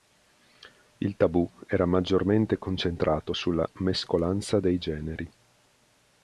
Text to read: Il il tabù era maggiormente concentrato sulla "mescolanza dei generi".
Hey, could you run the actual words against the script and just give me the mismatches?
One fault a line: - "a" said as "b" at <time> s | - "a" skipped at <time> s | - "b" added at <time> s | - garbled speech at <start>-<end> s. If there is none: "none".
- "il" skipped at 1.1 s